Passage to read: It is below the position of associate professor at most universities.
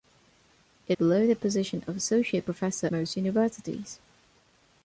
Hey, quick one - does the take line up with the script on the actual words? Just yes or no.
no